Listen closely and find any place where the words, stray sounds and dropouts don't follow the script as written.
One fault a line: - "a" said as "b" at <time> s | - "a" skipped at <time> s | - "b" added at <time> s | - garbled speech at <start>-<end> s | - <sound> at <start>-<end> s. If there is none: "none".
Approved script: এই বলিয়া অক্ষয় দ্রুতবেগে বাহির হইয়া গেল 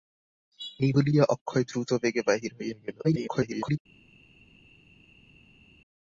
- garbled speech at 3.0-3.8 s